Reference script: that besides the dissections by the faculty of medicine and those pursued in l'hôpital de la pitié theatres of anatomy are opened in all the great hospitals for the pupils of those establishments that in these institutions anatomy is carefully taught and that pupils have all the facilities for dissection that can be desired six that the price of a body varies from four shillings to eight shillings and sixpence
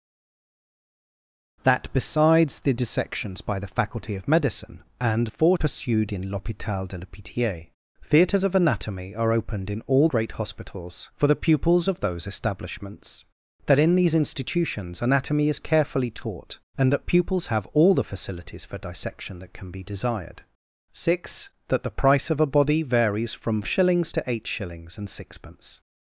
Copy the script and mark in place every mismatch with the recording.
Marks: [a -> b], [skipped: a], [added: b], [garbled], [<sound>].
that besides the dissections by the faculty of medicine and [those -> four] pursued in l'hôpital de la pitié theatres of anatomy are opened in all [skipped: the] great hospitals for the pupils of those establishments that in these institutions anatomy is carefully taught and that pupils have all the facilities for dissection that can be desired six that the price of a body varies from [skipped: four] shillings to eight shillings and sixpence